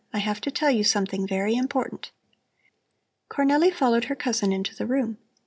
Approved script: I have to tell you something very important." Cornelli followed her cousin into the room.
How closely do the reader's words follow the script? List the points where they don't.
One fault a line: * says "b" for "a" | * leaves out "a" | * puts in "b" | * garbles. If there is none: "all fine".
all fine